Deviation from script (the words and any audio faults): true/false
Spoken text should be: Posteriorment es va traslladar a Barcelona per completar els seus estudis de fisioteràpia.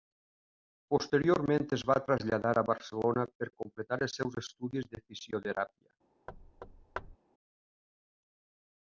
true